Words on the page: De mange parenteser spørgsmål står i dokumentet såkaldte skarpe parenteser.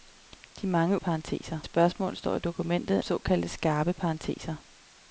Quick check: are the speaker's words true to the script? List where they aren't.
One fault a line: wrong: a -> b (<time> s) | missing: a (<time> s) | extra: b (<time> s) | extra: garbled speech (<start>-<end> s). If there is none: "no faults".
no faults